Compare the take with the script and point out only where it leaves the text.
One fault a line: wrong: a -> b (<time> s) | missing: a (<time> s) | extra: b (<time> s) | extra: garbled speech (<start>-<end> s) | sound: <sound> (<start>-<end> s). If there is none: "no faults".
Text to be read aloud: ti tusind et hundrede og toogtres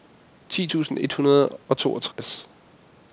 sound: dropout (2.1-2.2 s)